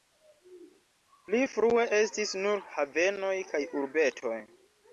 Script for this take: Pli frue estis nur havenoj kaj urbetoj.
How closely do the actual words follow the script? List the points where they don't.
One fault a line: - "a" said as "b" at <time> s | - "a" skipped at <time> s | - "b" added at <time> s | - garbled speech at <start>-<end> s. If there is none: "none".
none